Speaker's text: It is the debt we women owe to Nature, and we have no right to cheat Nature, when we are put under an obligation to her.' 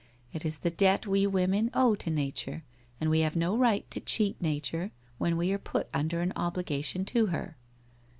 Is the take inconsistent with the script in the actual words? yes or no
no